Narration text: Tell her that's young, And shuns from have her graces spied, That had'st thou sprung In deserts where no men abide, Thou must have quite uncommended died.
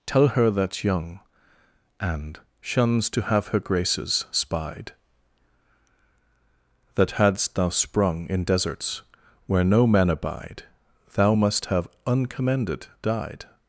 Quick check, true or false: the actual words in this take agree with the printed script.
false